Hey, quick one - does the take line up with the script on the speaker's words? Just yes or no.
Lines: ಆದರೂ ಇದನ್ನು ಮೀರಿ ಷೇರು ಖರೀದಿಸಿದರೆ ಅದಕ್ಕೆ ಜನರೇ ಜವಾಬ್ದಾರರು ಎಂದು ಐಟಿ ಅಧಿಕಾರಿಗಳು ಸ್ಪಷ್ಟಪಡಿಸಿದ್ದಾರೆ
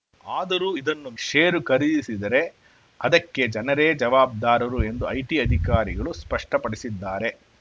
no